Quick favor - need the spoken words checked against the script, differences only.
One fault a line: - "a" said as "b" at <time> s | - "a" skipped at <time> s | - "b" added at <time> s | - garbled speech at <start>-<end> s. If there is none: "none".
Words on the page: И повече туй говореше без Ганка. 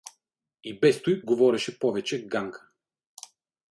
- "повече" said as "без" at 0.7 s
- "без" said as "повече" at 1.8 s